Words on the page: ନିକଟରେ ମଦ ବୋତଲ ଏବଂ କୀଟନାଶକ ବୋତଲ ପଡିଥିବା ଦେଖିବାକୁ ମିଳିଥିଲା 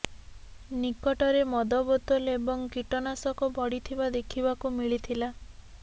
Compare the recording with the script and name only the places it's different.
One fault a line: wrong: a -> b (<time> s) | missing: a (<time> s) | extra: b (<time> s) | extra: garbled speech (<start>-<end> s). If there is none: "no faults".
missing: ବୋତଲ (3.5 s)